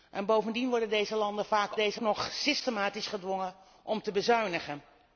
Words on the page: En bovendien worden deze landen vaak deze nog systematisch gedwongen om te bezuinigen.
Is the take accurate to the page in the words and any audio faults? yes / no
yes